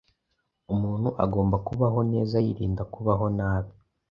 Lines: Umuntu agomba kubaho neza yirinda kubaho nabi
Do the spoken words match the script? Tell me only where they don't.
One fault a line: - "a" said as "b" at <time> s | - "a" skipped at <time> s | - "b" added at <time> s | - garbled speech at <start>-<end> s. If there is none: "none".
none